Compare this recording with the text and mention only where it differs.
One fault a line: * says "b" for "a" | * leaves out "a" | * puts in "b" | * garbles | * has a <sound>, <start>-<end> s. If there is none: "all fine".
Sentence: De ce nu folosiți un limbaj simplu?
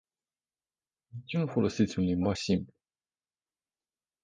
all fine